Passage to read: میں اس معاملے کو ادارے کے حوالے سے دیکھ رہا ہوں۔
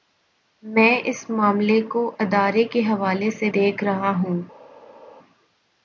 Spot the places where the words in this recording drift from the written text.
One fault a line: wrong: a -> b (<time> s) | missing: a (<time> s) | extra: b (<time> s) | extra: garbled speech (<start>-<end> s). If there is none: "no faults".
no faults